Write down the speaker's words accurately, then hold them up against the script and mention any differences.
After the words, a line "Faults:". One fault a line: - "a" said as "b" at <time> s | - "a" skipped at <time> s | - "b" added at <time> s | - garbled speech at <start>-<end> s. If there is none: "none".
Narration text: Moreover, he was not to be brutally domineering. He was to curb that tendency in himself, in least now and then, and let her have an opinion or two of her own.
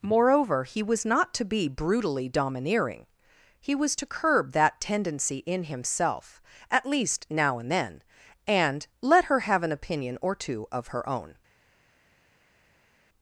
Moreover, he was not to be brutally domineering. He was to curb that tendency in himself, at least now and then, and let her have an opinion or two of her own.
Faults:
- "in" said as "at" at 6.7 s